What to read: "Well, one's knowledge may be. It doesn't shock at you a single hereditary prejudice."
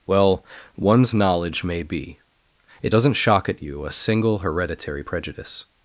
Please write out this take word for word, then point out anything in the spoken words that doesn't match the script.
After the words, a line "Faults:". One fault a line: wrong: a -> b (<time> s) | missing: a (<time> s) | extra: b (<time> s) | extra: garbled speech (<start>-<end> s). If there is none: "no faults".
"Well, one's knowledge may be. It doesn't shock at you a single hereditary prejudice."
Faults:
no faults